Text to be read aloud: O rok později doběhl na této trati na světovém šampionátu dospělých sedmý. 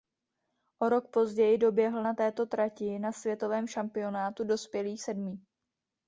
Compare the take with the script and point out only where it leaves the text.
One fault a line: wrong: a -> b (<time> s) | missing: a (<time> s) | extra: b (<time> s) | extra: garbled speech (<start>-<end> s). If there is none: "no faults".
no faults